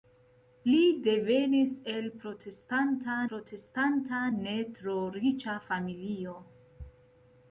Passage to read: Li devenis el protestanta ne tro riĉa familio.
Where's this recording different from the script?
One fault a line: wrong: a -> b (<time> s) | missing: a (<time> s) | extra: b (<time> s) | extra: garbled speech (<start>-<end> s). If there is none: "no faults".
extra: protestanta (3.3 s)